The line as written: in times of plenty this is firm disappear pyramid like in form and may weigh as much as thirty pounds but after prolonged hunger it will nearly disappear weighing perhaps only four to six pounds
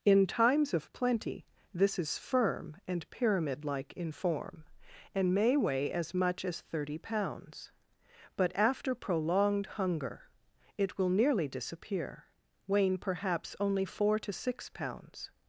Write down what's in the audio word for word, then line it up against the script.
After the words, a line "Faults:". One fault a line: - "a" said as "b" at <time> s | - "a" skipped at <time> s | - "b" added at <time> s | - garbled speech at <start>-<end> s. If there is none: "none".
in times of plenty this is firm and pyramid like in form and may weigh as much as thirty pounds but after prolonged hunger it will nearly disappear weighing perhaps only four to six pounds
Faults:
- "disappear" said as "and" at 2.9 s